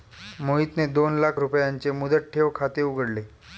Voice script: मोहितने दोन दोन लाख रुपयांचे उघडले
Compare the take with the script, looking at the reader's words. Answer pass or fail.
fail